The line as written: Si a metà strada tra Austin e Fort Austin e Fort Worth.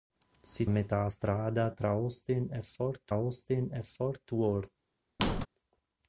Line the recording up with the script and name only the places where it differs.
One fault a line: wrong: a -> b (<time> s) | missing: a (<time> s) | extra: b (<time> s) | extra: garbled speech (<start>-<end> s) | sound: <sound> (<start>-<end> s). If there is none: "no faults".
sound: squeak (5.2-5.5 s)